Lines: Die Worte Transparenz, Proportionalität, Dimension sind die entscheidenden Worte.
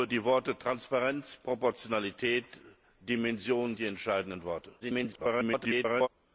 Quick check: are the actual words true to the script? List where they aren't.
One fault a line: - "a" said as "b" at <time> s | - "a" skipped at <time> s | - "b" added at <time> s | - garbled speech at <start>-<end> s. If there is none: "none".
- "sind" skipped at 3.8 s
- garbled speech at 4.8-6.1 s